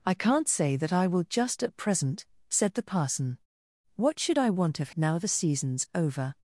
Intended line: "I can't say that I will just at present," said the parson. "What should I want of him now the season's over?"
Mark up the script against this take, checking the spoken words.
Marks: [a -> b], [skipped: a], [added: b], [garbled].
"I can't say that I will just at present," said the parson. "What should I want of [skipped: him] now the season's over?"